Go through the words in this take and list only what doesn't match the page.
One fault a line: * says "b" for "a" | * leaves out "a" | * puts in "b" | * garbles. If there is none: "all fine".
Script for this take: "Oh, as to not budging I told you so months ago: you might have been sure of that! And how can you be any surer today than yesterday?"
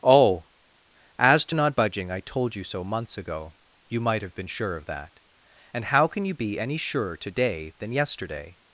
all fine